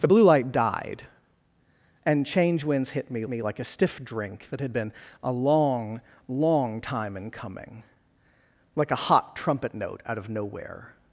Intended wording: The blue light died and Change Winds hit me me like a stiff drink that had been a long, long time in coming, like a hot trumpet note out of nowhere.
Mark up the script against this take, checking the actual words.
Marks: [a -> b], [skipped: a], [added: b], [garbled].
The blue light died and Change Winds hit me me like a stiff drink that had been a long, long time in coming, like a hot trumpet note out of nowhere.